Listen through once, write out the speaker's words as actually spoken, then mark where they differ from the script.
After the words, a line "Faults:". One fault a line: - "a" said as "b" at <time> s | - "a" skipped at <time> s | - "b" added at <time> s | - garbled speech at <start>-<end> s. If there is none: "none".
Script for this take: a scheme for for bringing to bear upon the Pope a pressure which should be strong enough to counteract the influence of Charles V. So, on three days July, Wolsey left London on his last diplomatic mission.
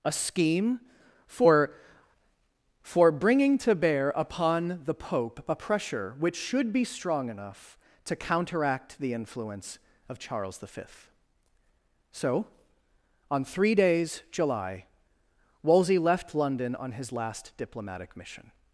a scheme for for bringing to bear upon the Pope a pressure which should be strong enough to counteract the influence of Charles V. So, on three days July, Wolsey left London on his last diplomatic mission.
Faults:
none